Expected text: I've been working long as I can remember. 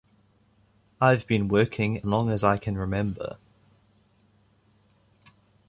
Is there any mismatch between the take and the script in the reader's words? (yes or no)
no